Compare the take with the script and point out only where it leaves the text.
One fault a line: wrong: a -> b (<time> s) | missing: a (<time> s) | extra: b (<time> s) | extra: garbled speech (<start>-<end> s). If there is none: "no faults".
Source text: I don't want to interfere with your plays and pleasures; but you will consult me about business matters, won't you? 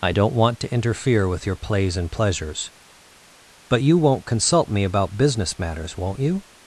wrong: will -> won't (4.0 s)